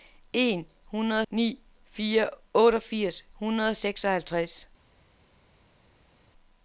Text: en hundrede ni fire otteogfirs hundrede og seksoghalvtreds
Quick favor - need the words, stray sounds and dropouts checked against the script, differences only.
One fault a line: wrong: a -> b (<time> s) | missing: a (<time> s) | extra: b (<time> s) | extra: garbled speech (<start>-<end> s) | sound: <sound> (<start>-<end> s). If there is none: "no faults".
no faults